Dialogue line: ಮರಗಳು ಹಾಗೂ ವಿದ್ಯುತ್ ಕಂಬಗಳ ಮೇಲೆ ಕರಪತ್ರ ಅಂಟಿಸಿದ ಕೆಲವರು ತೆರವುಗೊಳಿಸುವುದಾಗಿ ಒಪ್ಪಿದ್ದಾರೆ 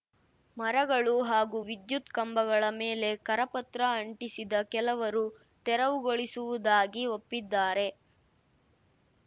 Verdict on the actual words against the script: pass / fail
pass